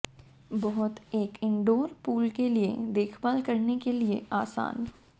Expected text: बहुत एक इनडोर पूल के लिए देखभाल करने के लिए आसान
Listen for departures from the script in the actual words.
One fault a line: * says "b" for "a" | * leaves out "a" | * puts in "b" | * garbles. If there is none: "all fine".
all fine